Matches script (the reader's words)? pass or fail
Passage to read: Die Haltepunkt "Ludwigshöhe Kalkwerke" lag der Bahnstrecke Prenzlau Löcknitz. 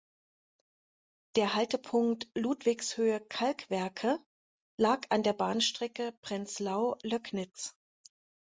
fail